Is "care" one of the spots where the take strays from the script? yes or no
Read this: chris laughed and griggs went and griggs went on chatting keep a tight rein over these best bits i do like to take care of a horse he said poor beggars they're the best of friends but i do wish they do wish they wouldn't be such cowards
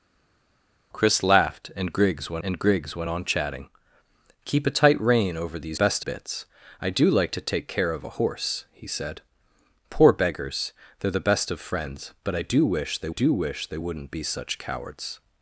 no